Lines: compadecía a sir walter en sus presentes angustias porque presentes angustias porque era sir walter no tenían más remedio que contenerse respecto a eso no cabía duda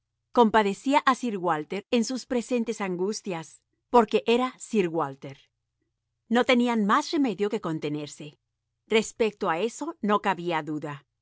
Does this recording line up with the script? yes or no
no